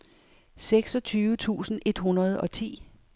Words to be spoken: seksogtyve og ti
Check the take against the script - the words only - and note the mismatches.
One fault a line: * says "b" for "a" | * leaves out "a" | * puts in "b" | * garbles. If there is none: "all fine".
* puts in "tusind et hundrede"